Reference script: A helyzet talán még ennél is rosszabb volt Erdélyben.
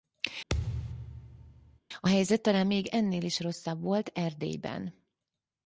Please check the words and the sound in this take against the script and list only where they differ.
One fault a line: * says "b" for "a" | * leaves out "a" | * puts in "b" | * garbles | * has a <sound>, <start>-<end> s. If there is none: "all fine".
* has a thud, 0.5-1.8 s